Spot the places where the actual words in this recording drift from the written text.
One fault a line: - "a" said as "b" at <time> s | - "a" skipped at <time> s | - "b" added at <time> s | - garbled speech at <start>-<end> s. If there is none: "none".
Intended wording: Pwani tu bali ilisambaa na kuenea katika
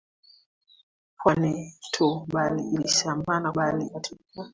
- "kuenea" said as "bali" at 3.6 s